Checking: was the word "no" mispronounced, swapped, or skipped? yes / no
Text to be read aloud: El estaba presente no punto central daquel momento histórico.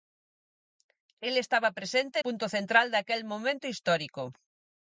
yes